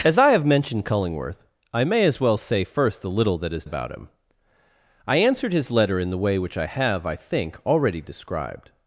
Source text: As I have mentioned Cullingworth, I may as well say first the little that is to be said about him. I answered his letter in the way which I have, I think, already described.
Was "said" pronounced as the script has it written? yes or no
no